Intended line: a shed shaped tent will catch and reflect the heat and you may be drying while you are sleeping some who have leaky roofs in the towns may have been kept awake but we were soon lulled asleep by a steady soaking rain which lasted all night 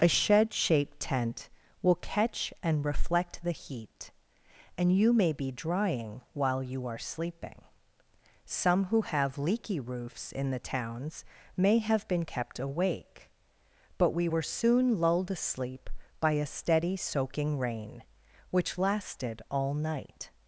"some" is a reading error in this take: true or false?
false